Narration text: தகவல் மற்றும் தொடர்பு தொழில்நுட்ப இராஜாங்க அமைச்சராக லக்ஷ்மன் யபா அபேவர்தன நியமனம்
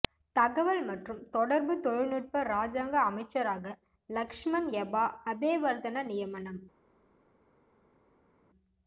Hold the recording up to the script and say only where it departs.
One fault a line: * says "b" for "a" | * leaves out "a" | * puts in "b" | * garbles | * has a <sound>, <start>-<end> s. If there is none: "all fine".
all fine